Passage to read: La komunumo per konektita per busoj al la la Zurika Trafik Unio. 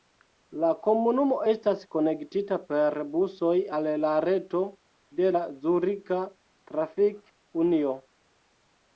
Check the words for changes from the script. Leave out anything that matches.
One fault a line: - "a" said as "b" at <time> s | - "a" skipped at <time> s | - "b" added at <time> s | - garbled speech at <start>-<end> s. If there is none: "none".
- "per" said as "estas" at 1.5 s
- "reto de" added at 4.3 s